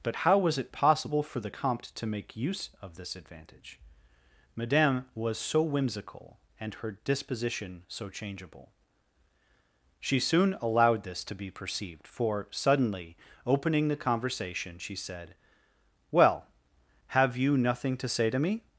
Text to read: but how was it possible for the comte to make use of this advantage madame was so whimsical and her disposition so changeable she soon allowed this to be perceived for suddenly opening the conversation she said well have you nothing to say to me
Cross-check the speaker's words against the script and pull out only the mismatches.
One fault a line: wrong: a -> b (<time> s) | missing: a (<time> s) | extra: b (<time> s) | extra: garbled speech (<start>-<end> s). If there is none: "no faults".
no faults